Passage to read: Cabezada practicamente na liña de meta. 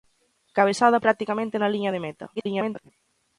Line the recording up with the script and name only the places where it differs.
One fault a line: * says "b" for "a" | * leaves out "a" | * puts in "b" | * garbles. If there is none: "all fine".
* garbles